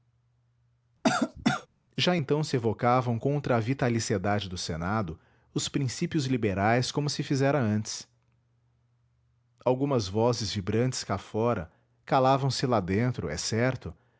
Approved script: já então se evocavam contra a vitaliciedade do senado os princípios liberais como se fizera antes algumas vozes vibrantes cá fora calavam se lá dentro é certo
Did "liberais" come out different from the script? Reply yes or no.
no